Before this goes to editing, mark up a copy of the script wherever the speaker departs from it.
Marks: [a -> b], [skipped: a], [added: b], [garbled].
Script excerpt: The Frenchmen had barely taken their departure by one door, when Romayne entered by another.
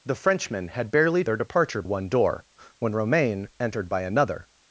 The Frenchmen had barely [skipped: taken] their departure [skipped: by] one door, when Romayne entered by another.